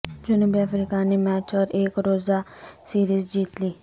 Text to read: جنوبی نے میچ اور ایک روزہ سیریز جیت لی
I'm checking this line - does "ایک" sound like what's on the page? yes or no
yes